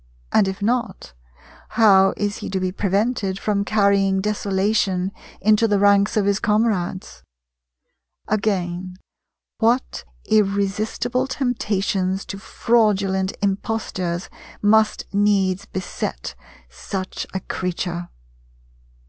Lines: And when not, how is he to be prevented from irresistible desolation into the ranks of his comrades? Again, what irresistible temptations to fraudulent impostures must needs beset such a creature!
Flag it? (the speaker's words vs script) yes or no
yes